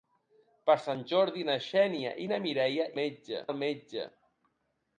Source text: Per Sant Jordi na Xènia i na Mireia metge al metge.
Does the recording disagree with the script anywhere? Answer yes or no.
no